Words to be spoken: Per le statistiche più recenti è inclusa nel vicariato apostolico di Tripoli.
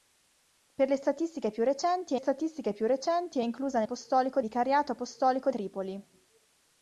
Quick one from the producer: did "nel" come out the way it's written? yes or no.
no